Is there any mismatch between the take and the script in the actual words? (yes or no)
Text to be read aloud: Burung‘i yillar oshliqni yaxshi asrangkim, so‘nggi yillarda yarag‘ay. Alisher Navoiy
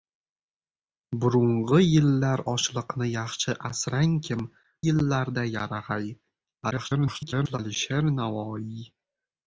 yes